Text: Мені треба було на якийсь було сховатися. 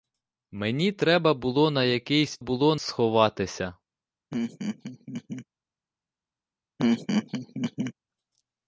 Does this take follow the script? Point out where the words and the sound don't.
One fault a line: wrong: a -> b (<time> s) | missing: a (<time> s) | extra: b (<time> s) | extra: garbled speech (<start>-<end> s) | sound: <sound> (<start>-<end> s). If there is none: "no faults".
sound: laugh (4.3-5.5 s)
sound: laugh (6.8-7.9 s)